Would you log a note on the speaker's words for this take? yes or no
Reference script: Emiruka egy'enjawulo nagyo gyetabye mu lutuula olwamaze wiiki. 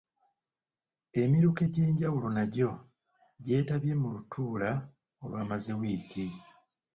no